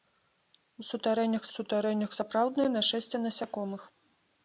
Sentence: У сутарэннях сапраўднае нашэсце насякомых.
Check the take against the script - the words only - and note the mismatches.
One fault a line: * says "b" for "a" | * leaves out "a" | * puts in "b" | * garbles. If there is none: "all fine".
* puts in "сутарэннях"